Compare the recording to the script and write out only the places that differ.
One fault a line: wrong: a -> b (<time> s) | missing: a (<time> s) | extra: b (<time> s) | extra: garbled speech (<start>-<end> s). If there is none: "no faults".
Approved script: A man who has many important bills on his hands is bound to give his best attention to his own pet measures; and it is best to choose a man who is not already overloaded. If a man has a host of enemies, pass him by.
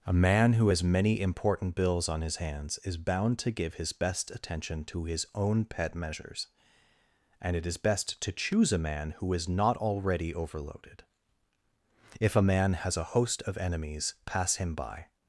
no faults